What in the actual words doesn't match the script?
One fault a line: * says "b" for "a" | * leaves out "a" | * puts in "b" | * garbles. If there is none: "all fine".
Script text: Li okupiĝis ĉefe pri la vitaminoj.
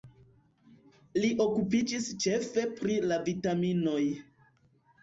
all fine